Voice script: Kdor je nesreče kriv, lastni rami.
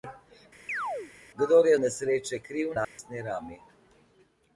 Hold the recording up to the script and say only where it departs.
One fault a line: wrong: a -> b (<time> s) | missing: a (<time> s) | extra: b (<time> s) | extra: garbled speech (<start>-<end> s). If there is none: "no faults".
no faults